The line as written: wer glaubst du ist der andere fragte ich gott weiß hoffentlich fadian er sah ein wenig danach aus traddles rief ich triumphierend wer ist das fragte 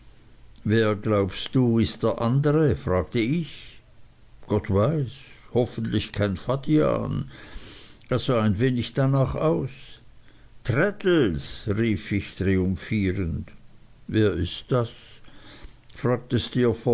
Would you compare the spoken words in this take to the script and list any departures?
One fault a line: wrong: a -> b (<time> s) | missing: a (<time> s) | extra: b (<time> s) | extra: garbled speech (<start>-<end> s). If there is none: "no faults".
extra: kein (6.1 s)